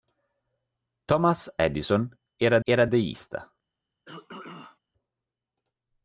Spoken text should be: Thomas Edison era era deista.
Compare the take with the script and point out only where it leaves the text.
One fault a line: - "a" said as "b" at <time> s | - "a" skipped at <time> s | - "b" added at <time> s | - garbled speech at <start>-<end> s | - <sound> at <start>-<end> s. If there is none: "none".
- throat clearing at 4.1-4.8 s